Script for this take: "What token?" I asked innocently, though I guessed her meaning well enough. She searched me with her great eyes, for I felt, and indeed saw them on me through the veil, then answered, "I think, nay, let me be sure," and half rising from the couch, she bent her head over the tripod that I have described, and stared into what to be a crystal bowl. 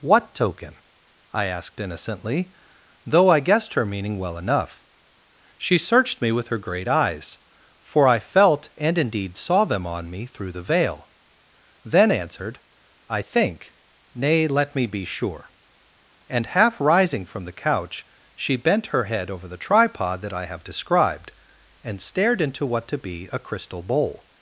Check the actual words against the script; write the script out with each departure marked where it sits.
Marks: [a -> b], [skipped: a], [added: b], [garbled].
"What token?" I asked innocently, though I guessed her meaning well enough. She searched me with her great eyes, for I felt, and indeed saw them on me through the veil, then answered, "I think, nay, let me be sure," and half rising from the couch, she bent her head over the tripod that I have described, and stared into what to be a crystal bowl.